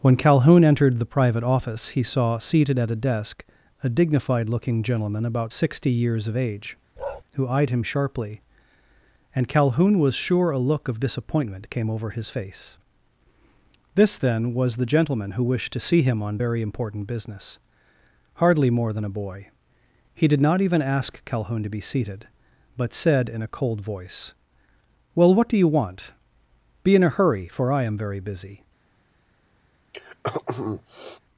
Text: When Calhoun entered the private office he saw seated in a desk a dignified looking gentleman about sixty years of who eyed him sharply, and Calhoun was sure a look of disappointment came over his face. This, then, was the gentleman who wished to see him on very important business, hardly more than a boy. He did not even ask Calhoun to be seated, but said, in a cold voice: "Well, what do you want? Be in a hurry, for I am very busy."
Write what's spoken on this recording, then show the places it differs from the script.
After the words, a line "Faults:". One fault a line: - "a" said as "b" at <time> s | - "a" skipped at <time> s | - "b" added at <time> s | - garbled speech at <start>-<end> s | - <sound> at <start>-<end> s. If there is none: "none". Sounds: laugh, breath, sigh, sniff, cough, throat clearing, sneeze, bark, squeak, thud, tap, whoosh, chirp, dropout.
When Calhoun entered the private office he saw seated at a desk a dignified looking gentleman about sixty years of age, who eyed him sharply, and Calhoun was sure a look of disappointment came over his face. This, then, was the gentleman who wished to see him on very important business, hardly more than a boy. He did not even ask Calhoun to be seated, but said, in a cold voice: "Well, what do you want? Be in a hurry, for I am very busy."
Faults:
- "in" said as "at" at 2.8 s
- "age" added at 6.4 s
- bark at 7.0-7.2 s
- throat clearing at 29.9-31.2 s